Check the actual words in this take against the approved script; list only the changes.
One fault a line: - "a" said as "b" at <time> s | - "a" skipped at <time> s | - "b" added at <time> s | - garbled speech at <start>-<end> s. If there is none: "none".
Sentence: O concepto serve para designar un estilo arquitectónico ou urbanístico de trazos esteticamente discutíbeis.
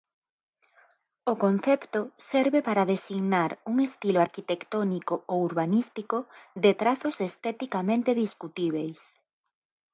none